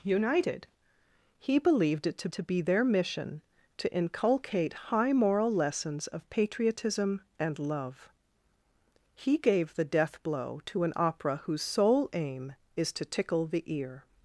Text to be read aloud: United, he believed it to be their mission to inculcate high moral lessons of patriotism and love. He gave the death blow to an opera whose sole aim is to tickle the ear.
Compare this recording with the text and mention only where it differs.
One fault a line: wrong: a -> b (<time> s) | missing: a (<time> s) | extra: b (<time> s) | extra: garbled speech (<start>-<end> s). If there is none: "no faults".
extra: to (2.3 s)